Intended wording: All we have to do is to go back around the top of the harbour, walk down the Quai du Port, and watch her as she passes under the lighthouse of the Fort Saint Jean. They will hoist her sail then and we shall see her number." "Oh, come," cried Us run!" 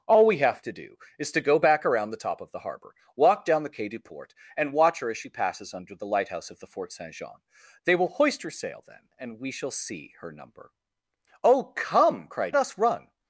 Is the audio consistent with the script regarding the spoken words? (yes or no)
yes